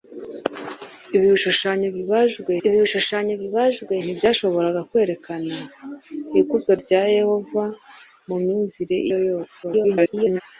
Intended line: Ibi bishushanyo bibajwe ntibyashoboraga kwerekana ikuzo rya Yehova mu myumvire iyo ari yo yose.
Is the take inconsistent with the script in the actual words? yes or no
yes